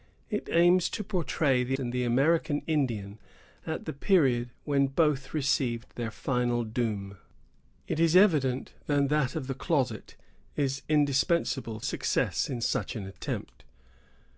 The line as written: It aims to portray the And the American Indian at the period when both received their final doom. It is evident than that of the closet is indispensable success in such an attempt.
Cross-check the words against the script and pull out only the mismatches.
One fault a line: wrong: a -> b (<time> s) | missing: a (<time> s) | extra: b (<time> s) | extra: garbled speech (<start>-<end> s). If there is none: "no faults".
no faults